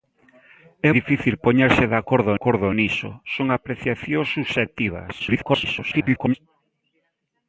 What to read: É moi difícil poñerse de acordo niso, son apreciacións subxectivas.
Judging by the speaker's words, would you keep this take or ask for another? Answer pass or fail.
fail